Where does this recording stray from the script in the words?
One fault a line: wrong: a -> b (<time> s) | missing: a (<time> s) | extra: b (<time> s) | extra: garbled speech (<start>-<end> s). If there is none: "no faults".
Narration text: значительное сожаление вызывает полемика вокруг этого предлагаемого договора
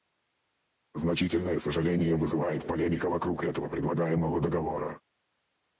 no faults